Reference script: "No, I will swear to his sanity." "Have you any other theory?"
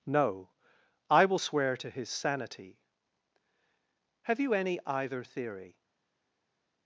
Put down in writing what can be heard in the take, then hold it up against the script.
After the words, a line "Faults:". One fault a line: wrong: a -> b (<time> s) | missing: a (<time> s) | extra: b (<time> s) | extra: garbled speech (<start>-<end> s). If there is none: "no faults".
"No, I will swear to his sanity." "Have you any either theory?"
Faults:
wrong: other -> either (4.8 s)